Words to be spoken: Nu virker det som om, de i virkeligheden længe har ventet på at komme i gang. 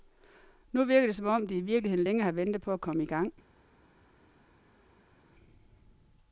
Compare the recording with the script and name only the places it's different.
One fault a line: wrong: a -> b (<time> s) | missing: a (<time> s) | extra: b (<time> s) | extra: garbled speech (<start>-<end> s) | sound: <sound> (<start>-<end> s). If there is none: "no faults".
no faults